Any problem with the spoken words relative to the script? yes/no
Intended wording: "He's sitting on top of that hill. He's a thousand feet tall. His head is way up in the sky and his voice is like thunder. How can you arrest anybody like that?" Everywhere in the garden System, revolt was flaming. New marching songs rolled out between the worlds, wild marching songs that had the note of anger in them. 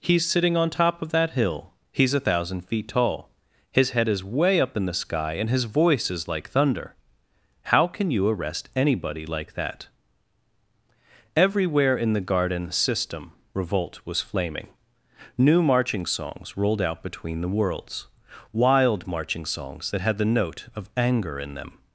no